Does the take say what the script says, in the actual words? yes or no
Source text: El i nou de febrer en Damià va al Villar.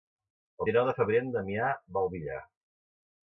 yes